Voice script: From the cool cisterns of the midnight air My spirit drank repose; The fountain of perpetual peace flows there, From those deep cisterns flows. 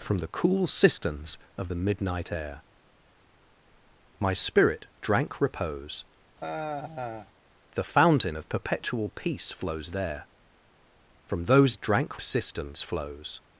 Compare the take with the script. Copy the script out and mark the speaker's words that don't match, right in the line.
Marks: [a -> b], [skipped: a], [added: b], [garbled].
From the cool cisterns of the midnight air My spirit drank repose; The fountain of perpetual peace flows there, From those [deep -> drank] cisterns flows.